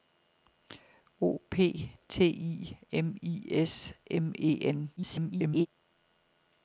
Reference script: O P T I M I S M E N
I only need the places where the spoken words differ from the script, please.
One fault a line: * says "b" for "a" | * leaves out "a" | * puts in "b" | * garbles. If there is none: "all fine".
* garbles